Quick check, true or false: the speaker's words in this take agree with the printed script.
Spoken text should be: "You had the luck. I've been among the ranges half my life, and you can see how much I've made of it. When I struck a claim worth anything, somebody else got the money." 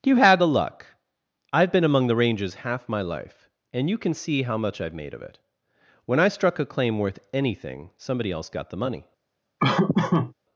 true